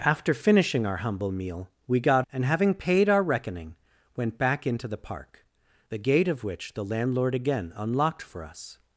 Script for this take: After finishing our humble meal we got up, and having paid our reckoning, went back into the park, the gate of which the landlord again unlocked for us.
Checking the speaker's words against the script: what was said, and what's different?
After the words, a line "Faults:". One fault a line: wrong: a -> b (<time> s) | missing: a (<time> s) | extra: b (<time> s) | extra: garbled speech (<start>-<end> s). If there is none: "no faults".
After finishing our humble meal we got and having paid our reckoning, went back into the park, the gate of which the landlord again unlocked for us.
Faults:
missing: up (2.2 s)